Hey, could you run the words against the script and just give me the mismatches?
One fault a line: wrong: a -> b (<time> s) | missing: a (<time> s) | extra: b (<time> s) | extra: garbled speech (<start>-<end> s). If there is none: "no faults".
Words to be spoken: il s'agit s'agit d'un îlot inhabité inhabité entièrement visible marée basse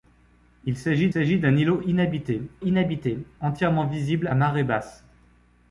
no faults